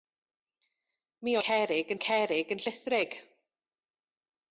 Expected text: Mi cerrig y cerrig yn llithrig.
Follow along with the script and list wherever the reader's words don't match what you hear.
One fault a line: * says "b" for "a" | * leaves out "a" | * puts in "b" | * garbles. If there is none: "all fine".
all fine